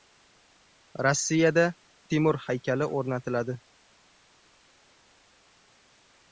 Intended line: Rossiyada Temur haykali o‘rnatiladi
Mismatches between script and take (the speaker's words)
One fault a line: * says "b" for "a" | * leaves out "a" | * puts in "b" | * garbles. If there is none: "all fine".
all fine